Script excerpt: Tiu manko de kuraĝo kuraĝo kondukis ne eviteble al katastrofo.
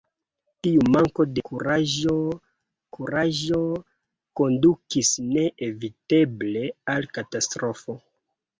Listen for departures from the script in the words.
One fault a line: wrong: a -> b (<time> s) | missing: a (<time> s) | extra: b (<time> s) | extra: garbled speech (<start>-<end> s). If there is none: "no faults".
no faults